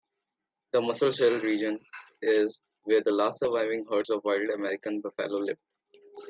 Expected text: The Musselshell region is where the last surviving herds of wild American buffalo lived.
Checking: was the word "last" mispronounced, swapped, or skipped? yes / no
no